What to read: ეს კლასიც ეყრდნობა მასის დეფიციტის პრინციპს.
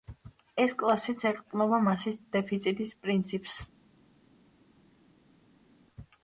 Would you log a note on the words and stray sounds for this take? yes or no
no